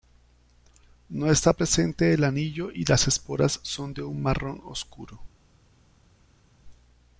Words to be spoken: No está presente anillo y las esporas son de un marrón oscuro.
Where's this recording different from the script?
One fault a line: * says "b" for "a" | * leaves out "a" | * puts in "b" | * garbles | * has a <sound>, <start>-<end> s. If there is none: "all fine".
* puts in "el"